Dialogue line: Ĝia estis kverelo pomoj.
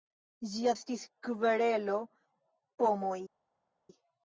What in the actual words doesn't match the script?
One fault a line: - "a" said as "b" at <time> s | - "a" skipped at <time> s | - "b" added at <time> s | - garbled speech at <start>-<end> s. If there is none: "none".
none